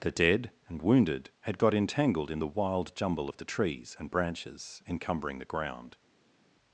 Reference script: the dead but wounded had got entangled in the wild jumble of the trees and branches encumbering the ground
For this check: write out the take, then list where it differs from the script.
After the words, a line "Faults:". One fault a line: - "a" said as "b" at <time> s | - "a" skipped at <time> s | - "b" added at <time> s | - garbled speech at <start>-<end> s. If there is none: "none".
the dead and wounded had got entangled in the wild jumble of the trees and branches encumbering the ground
Faults:
- "but" said as "and" at 0.7 s